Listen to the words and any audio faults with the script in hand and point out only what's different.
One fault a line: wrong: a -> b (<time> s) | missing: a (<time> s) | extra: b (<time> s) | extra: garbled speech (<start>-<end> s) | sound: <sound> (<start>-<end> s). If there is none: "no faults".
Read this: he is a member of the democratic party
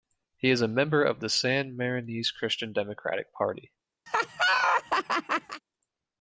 extra: san marinese christian (1.3 s)
sound: laugh (4.1-5.6 s)